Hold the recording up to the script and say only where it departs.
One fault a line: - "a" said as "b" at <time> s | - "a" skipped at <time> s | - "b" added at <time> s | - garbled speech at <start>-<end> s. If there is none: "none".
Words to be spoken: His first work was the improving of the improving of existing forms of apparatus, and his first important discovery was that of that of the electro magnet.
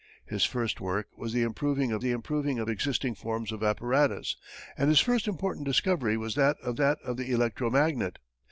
none